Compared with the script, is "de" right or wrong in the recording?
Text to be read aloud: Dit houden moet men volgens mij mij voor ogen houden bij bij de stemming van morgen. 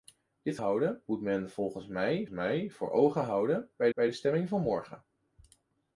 right